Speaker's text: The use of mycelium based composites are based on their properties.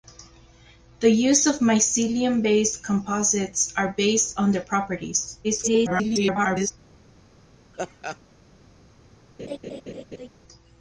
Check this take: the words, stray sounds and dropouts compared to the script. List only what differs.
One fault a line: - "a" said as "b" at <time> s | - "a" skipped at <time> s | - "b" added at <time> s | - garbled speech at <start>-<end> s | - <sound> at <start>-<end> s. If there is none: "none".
- garbled speech at 5.4-6.7 s
- laugh at 7.7-8.2 s
- laugh at 9.4-10.3 s